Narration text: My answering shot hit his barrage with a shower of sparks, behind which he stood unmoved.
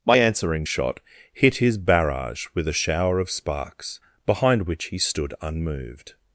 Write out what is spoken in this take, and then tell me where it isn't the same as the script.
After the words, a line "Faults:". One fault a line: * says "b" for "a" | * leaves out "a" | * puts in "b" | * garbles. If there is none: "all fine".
My answering shot hit his barrage with a shower of sparks, behind which he stood unmoved.
Faults:
all fine